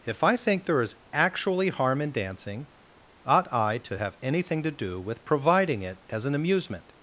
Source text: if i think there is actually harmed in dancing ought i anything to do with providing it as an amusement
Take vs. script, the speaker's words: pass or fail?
fail